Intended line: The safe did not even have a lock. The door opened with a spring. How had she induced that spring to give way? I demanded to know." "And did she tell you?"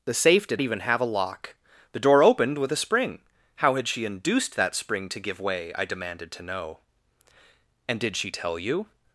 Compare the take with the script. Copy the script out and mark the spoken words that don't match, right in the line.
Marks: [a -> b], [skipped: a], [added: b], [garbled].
The safe did [skipped: not] even have a lock. The door opened with a spring. How had she induced that spring to give way? I demanded to know." "And did she tell you?"